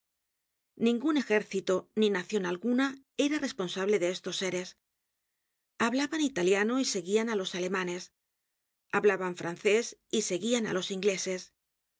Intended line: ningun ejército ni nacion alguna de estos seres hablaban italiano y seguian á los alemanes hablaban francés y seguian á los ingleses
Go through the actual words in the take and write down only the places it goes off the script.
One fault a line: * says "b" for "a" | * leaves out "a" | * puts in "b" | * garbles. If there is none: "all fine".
* puts in "era responsable"